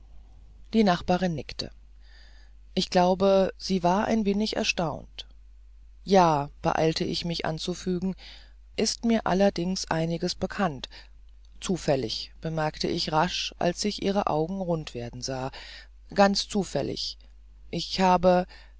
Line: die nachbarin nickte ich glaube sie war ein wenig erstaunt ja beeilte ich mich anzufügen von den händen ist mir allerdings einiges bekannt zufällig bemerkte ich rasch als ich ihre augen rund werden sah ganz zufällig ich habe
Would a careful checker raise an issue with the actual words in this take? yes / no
yes